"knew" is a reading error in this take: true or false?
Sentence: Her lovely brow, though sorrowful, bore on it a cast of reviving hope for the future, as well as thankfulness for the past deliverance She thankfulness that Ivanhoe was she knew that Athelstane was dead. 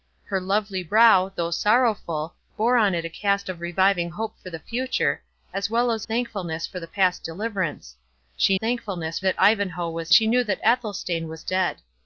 false